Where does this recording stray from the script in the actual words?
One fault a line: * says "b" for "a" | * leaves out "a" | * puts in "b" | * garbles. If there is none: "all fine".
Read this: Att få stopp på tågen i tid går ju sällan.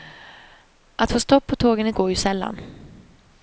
* leaves out "tid"